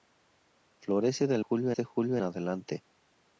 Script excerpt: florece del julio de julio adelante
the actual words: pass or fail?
pass